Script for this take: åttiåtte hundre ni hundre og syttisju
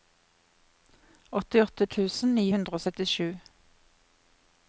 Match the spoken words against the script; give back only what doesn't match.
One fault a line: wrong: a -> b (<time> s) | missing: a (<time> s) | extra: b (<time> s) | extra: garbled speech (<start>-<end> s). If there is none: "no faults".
wrong: hundre -> tusen (2.0 s)